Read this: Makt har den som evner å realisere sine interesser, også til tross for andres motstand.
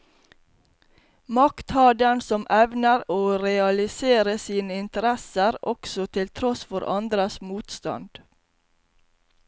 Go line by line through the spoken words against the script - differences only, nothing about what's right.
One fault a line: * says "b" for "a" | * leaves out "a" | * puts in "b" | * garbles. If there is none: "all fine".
all fine